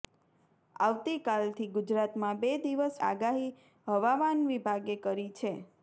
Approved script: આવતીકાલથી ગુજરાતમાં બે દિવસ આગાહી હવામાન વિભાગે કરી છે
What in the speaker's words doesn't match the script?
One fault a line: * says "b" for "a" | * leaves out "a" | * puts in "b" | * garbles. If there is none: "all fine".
all fine